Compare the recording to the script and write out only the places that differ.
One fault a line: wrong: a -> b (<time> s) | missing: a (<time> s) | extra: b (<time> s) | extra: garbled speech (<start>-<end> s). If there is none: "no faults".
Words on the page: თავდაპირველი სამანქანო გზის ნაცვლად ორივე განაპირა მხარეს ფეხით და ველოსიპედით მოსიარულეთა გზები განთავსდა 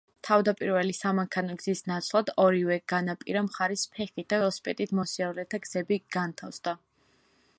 no faults